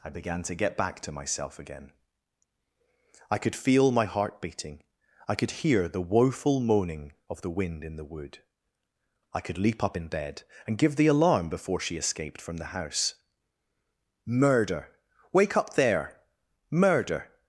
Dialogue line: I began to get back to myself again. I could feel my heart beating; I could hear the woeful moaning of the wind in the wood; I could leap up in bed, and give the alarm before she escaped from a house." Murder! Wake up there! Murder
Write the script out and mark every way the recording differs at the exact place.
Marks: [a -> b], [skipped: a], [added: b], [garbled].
I began to get back to myself again. I could feel my heart beating; I could hear the woeful moaning of the wind in the wood; I could leap up in bed, and give the alarm before she escaped from [a -> the] house." Murder! Wake up there! Murder